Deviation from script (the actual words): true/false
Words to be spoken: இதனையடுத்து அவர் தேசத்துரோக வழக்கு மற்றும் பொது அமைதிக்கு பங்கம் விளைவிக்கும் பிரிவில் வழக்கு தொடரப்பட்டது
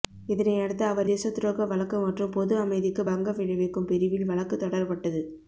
false